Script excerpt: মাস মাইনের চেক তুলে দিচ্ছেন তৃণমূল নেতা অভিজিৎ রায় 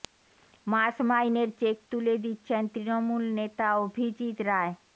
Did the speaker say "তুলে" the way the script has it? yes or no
yes